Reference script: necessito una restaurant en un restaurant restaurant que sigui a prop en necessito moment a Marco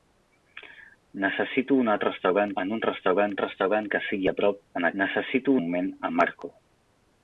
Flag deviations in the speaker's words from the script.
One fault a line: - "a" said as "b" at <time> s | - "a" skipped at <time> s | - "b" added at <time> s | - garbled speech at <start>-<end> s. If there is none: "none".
none